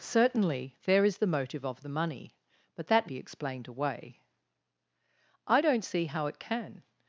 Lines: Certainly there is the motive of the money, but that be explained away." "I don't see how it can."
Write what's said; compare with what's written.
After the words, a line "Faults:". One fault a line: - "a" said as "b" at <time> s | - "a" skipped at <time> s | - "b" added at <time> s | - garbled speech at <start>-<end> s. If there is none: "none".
Certainly there is the motive of the money, but that be explained away." "I don't see how it can."
Faults:
none